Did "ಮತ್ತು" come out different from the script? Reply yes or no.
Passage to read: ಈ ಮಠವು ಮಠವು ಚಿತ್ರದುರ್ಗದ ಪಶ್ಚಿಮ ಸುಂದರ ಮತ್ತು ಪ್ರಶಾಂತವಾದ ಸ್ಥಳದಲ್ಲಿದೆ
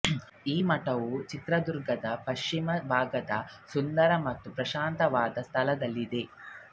no